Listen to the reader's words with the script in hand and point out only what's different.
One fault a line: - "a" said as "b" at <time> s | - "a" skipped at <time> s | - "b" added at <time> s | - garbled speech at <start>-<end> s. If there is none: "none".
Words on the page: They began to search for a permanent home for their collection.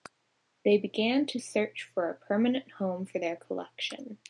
none